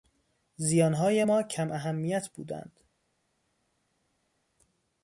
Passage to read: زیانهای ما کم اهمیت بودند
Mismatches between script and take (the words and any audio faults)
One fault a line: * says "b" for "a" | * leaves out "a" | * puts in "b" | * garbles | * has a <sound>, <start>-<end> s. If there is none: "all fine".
all fine